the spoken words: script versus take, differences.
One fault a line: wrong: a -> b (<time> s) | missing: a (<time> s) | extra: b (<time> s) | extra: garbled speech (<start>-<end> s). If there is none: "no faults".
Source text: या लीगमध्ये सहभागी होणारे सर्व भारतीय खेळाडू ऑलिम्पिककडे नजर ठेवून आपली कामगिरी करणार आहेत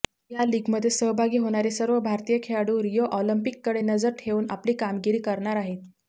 extra: रिओ (2.8 s)